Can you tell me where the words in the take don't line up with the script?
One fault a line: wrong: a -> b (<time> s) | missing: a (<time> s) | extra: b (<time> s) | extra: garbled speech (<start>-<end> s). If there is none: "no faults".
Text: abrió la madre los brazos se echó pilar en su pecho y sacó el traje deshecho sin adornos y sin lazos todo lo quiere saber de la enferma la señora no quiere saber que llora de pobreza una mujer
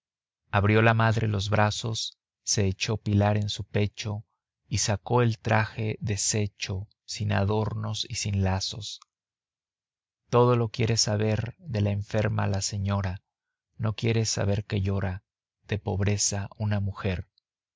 no faults